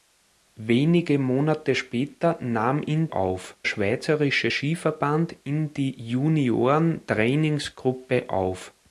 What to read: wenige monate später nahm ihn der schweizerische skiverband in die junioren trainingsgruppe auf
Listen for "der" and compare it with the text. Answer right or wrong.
wrong